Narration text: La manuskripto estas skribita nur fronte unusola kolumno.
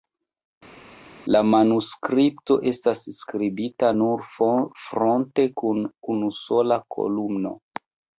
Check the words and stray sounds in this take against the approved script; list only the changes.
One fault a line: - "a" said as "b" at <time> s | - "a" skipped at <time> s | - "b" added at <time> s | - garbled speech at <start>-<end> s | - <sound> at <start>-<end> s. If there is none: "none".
- "kun" added at 5.6 s